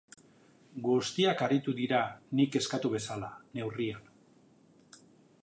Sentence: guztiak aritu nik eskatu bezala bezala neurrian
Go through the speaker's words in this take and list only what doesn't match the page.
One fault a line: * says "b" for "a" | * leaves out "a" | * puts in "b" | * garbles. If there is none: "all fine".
* puts in "dira"
* leaves out "bezala"